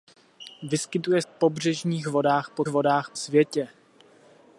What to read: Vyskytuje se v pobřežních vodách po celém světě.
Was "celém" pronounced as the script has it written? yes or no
no